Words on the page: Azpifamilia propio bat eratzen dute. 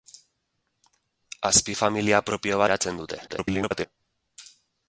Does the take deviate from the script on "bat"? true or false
true